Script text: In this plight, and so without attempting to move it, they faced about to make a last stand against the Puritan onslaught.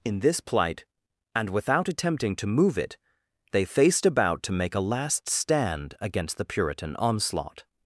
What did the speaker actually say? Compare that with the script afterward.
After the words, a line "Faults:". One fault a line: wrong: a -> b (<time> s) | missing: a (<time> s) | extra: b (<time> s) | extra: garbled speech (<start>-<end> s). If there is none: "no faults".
In this plight, and without attempting to move it, they faced about to make a last stand against the Puritan onslaught.
Faults:
missing: so (1.5 s)